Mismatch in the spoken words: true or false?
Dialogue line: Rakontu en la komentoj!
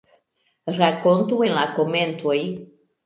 false